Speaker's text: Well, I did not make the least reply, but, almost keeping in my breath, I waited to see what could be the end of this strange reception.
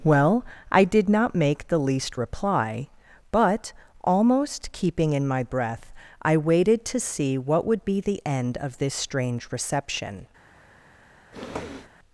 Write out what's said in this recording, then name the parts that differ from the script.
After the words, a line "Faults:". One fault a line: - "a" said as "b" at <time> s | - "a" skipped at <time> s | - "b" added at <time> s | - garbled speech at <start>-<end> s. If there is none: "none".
Well, I did not make the least reply, but, almost keeping in my breath, I waited to see what would be the end of this strange reception.
Faults:
- "could" said as "would" at 7.6 s